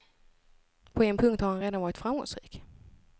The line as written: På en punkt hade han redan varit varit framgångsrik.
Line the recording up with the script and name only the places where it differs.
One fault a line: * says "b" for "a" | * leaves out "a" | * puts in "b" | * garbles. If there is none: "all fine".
* says "har" for "hade"
* leaves out "varit"